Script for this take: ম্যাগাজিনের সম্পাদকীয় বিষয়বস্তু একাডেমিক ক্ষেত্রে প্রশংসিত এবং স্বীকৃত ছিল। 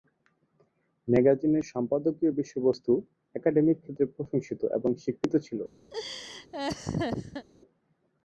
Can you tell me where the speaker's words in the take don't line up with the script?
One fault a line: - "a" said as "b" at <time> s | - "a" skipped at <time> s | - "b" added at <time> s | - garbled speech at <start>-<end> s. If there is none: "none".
none